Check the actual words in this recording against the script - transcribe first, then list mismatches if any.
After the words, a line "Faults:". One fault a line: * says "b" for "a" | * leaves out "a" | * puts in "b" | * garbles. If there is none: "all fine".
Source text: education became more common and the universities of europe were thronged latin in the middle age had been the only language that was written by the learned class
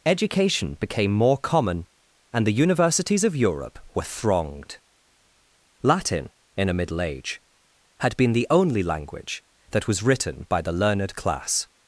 education became more common and the universities of europe were thronged latin in a middle age had been the only language that was written by the learned class
Faults:
* says "a" for "the"